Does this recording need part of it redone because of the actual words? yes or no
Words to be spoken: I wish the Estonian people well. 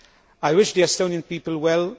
no